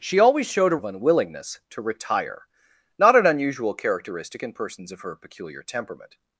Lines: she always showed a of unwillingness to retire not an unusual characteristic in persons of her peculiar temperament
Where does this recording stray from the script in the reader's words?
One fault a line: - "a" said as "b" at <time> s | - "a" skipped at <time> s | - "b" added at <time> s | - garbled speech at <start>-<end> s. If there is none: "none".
none